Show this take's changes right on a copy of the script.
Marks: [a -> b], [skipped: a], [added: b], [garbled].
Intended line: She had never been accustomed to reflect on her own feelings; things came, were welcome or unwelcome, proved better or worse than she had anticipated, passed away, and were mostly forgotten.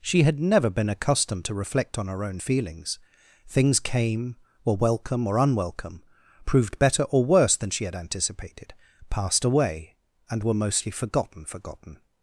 She had never been accustomed to reflect on her own feelings; things came, were welcome or unwelcome, proved better or worse than she had anticipated, passed away, and were mostly forgotten. [added: forgotten]